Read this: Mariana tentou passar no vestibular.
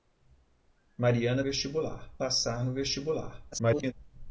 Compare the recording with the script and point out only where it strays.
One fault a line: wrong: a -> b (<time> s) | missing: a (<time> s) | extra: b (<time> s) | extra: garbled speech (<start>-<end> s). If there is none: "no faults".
wrong: tentou -> vestibular (1.4 s)
extra: garbled speech (3.5-3.9 s)